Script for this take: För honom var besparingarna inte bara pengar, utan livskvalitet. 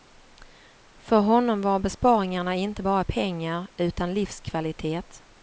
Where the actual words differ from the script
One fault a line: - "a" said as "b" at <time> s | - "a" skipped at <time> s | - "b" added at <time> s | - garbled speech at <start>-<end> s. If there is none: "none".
none